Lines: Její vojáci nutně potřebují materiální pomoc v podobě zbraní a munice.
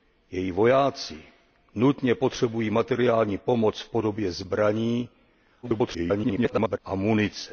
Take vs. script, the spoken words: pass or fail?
fail